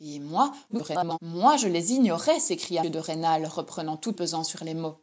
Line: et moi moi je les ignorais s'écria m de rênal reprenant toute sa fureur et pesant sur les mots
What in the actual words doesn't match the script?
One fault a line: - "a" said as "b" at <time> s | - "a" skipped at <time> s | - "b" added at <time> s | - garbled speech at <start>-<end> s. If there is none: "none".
- garbled speech at 0.7-1.2 s
- "m" skipped at 2.8 s
- "sa fureur et" skipped at 4.2 s